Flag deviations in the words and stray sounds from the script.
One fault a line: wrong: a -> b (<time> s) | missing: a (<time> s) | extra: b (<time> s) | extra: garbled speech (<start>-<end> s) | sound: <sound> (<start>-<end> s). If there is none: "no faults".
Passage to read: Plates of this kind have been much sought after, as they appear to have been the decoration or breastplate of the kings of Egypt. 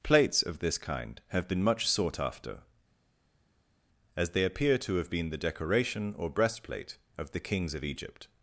no faults